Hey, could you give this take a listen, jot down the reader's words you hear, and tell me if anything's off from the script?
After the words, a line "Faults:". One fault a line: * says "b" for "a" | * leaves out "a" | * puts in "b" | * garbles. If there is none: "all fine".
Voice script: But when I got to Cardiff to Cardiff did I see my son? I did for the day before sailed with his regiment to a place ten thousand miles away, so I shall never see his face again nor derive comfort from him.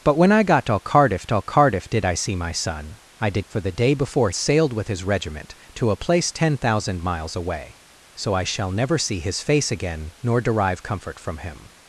But when I got to Cardiff to Cardiff did I see my son? I did for the day before sailed with his regiment to a place ten thousand miles away, so I shall never see his face again nor derive comfort from him.
Faults:
all fine